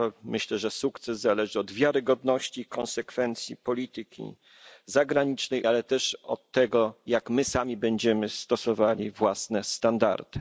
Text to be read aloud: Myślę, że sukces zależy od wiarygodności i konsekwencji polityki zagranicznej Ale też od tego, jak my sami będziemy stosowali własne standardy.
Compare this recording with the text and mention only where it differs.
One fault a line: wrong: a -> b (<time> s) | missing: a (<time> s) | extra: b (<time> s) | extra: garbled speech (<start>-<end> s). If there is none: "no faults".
no faults